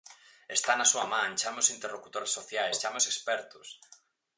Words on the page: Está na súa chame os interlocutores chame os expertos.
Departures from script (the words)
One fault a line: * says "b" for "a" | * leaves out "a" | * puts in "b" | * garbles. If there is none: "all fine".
* puts in "man"
* puts in "sociais"